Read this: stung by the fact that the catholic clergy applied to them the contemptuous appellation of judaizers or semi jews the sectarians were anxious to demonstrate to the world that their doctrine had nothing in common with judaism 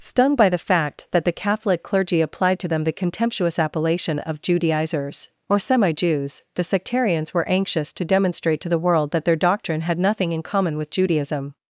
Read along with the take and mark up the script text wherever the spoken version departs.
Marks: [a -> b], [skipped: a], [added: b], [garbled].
stung by the fact that the catholic clergy applied to them the contemptuous appellation of judaizers or semi jews the sectarians were anxious to demonstrate to the world that their doctrine had nothing in common with judaism